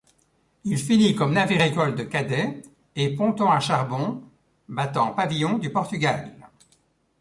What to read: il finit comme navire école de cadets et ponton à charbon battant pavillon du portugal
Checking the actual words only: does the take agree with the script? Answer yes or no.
yes